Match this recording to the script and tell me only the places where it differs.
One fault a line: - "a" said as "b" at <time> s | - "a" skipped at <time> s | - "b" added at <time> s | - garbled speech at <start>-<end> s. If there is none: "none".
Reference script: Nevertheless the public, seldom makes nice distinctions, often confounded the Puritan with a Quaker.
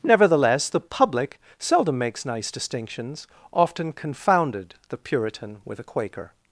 none